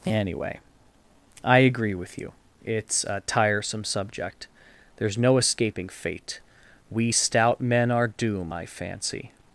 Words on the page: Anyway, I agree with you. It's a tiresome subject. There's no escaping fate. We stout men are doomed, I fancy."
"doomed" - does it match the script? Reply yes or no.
no